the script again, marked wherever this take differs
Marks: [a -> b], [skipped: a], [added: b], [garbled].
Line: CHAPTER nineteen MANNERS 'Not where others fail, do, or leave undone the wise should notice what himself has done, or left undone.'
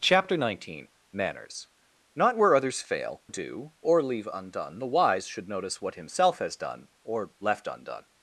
CHAPTER nineteen MANNERS 'Not where others fail, do, or leave undone the wise should notice what himself has done, or left undone.'